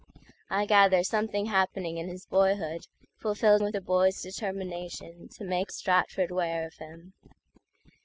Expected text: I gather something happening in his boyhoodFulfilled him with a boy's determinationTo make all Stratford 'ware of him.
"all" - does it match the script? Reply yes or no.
no